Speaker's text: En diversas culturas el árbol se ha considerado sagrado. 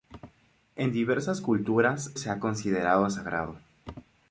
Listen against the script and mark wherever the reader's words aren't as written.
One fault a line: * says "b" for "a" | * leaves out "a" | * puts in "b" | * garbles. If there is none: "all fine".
* leaves out "el árbol"